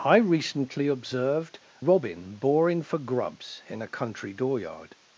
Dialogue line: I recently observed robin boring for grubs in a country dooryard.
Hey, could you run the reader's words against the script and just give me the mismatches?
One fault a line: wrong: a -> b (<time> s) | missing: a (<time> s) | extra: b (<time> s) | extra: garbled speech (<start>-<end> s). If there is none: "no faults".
no faults